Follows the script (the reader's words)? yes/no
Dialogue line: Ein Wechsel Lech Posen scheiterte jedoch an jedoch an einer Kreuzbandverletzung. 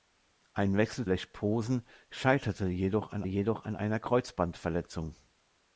yes